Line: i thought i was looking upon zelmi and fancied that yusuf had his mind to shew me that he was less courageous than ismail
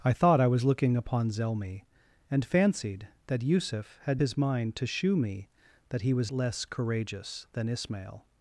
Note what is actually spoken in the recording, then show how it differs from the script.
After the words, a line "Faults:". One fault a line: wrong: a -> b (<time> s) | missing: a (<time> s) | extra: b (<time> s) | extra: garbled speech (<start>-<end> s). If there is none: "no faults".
i thought i was looking upon zelmi and fancied that yusuf had his mind to shew me that he was less courageous than ismail
Faults:
no faults